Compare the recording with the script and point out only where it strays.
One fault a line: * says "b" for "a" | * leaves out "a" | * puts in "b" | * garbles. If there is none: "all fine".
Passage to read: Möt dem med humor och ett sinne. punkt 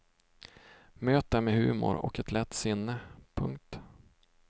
* puts in "lätt"